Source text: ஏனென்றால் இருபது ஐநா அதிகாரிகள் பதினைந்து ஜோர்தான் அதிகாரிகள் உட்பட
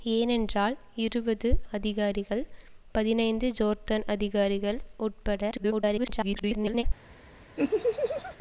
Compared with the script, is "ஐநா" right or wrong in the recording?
wrong